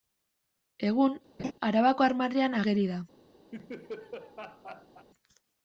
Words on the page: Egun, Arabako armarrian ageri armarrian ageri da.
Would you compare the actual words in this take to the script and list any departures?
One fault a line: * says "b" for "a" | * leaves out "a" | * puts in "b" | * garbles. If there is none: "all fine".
* leaves out "armarrian ageri"